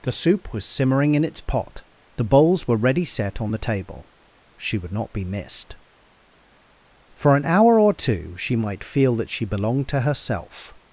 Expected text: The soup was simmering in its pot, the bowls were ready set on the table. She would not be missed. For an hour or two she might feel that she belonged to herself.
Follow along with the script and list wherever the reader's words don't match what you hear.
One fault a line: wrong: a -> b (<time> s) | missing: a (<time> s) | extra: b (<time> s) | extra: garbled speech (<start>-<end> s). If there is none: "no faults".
no faults